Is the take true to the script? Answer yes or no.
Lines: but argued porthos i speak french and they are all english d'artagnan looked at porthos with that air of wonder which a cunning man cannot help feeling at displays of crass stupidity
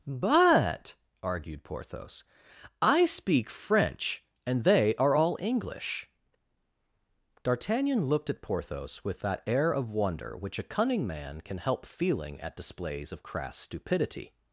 no